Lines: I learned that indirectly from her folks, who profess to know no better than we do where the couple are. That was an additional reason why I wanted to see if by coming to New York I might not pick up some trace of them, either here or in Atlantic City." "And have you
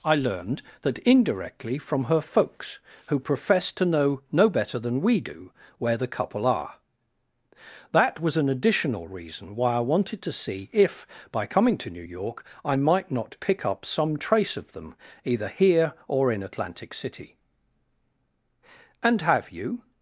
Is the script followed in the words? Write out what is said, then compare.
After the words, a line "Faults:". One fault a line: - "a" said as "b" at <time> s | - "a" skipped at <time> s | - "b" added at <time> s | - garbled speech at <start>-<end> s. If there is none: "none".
I learned that indirectly from her folks, who profess to know no better than we do where the couple are. That was an additional reason why I wanted to see if by coming to New York I might not pick up some trace of them, either here or in Atlantic City." "And have you
Faults:
none